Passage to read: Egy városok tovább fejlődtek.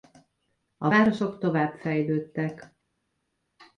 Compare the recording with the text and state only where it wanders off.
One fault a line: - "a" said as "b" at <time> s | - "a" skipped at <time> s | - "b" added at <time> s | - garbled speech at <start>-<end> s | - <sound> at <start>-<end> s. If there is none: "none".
- "Egy" said as "A" at 0.8 s